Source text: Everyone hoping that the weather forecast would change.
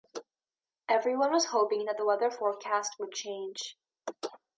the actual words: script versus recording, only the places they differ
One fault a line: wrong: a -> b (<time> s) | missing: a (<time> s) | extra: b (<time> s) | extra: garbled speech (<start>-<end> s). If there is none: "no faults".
extra: was (1.3 s)